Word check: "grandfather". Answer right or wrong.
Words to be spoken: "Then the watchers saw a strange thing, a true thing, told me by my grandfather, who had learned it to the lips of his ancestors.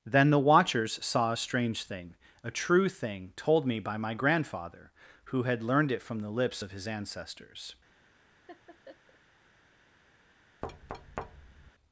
right